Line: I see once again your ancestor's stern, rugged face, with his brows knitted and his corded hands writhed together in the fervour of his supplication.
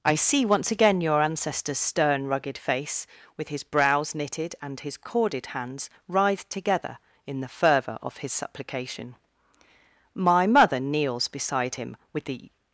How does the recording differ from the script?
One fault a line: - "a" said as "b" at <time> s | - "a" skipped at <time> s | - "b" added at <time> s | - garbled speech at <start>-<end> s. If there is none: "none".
- "My mother kneels beside him with the" added at 10.2 s